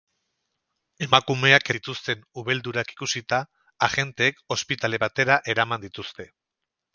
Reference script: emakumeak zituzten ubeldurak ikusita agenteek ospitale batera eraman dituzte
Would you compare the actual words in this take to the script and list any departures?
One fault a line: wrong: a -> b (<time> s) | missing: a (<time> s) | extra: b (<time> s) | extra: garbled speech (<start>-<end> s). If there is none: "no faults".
no faults